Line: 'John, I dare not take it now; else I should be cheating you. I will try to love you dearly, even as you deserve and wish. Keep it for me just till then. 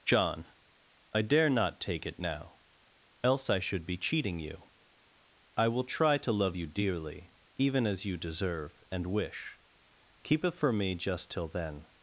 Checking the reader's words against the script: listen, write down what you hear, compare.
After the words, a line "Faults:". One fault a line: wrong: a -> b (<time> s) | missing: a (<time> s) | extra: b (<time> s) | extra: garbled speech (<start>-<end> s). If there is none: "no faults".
'John, I dare not take it now; else I should be cheating you. I will try to love you dearly, even as you deserve and wish. Keep it for me just till then.
Faults:
no faults